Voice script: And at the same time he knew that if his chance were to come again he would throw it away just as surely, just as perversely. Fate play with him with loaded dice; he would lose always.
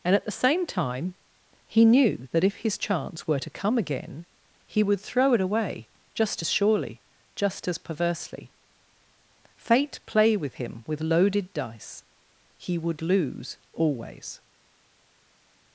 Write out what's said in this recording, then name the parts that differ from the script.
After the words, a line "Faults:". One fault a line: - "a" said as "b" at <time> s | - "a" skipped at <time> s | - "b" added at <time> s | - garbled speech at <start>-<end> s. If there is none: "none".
And at the same time he knew that if his chance were to come again he would throw it away just as surely, just as perversely. Fate play with him with loaded dice; he would lose always.
Faults:
none